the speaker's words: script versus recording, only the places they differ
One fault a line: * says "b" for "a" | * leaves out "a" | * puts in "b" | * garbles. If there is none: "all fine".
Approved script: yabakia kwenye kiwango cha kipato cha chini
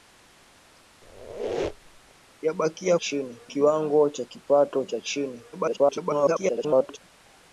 * says "chini" for "kwenye"
* garbles